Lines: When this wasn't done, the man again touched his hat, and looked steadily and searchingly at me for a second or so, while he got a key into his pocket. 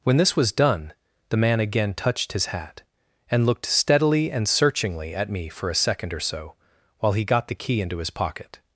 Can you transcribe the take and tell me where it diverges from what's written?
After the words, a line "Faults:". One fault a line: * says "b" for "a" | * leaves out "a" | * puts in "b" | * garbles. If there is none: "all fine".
When this was done, the man again touched his hat, and looked steadily and searchingly at me for a second or so, while he got the key into his pocket.
Faults:
* says "was" for "wasn't"
* says "the" for "a"